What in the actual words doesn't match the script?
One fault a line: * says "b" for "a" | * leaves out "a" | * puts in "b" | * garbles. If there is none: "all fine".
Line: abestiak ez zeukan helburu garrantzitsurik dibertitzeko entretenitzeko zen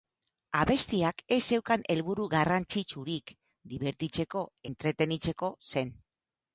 all fine